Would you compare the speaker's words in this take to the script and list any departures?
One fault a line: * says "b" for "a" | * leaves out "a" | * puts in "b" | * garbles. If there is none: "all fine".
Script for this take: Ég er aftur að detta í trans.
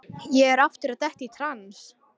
all fine